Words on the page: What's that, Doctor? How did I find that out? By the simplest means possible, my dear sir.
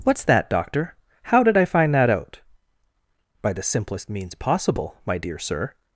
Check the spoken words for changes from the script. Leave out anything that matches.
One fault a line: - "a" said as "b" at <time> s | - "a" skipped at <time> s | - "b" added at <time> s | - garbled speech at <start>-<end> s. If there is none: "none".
none